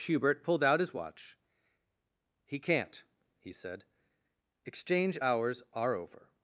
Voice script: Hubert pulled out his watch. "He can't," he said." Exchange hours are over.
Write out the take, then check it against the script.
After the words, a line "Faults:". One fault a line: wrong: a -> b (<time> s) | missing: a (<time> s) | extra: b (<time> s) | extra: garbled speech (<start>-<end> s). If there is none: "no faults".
Hubert pulled out his watch. "He can't," he said." Exchange hours are over.
Faults:
no faults